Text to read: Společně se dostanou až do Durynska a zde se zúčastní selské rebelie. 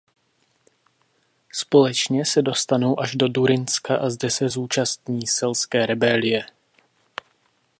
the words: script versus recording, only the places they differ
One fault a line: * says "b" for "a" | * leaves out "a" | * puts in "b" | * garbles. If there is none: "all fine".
all fine